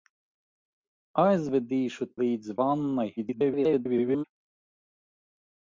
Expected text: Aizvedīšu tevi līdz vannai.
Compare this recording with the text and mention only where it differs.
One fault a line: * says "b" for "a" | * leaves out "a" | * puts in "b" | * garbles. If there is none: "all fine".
* leaves out "tevi"
* garbles